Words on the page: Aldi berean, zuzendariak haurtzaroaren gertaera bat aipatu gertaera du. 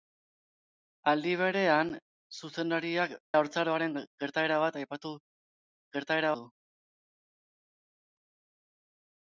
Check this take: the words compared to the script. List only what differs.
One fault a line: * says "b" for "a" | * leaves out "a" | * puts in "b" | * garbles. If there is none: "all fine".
all fine